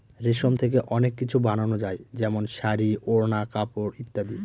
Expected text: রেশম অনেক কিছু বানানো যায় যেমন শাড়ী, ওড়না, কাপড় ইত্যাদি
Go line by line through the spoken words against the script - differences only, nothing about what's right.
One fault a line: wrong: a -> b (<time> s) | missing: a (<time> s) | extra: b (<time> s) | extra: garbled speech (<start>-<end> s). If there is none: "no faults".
extra: থেকে (0.5 s)